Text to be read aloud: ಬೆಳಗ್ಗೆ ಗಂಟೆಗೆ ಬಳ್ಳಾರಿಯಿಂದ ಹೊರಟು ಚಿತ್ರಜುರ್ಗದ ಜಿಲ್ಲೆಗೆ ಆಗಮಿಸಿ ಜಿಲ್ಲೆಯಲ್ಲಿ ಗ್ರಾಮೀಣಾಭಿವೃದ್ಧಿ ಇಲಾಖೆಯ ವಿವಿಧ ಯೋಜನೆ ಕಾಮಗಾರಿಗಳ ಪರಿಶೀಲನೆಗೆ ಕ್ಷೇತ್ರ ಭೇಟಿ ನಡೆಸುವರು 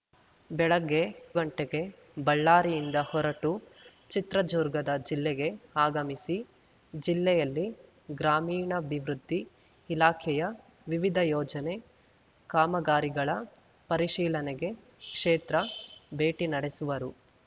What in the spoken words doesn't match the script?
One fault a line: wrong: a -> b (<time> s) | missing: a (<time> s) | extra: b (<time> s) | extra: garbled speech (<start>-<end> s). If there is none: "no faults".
no faults